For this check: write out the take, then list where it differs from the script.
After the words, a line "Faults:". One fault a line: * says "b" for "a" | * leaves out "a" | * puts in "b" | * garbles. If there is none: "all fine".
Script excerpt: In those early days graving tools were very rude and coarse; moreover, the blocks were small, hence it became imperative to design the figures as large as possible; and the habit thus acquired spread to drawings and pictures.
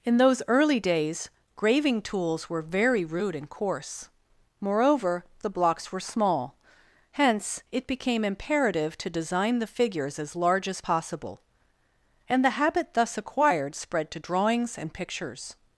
In those early days graving tools were very rude and coarse; moreover, the blocks were small, hence it became imperative to design the figures as large as possible; and the habit thus acquired spread to drawings and pictures.
Faults:
all fine